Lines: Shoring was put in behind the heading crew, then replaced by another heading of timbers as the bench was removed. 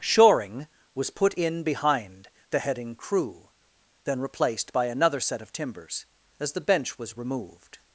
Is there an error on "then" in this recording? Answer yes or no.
no